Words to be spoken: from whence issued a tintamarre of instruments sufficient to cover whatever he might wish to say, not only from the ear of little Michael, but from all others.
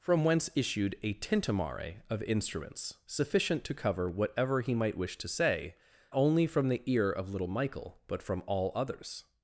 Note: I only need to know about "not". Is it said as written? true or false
false